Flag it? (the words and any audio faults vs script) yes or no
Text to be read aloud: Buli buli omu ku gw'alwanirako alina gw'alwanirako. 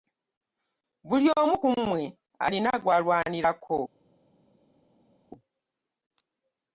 yes